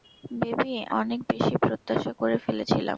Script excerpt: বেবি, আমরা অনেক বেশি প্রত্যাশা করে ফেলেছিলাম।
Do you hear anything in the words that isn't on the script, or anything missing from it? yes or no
yes